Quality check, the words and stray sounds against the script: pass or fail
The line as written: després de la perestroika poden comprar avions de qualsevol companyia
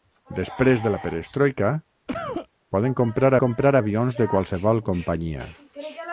fail